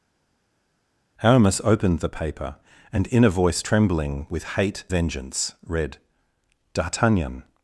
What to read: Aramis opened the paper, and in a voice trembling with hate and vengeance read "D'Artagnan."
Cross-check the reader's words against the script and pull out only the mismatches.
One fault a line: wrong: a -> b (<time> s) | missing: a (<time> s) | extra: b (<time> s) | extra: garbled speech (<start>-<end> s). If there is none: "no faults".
missing: and (4.8 s)